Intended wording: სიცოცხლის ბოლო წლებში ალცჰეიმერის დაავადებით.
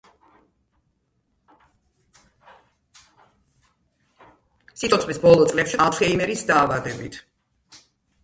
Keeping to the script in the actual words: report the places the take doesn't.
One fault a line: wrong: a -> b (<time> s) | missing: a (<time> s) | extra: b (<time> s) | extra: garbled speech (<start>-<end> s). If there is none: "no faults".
no faults